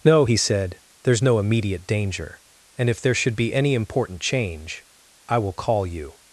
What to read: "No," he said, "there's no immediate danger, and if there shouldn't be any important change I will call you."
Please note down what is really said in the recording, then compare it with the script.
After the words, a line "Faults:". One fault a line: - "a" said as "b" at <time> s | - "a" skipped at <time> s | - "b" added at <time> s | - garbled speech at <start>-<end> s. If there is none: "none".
"No," he said, "there's no immediate danger, and if there should be any important change I will call you."
Faults:
- "shouldn't" said as "should" at 3.1 s